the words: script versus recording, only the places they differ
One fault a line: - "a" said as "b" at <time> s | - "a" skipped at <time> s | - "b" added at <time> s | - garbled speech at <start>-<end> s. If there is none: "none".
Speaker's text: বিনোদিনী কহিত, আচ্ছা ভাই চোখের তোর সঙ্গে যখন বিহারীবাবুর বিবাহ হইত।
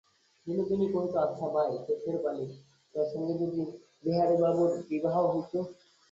- "বালি" added at 2.2 s
- "যখন" said as "যদি" at 3.4 s